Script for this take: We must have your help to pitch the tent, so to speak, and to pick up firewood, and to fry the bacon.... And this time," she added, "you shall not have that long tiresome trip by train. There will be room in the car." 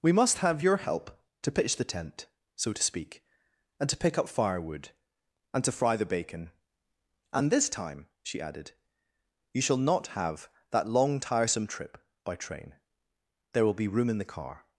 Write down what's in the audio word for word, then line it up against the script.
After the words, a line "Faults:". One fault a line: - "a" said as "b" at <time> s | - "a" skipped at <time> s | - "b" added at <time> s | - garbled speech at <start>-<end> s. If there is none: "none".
We must have your help to pitch the tent, so to speak, and to pick up firewood, and to fry the bacon.... And this time," she added, "you shall not have that long tiresome trip by train. There will be room in the car."
Faults:
none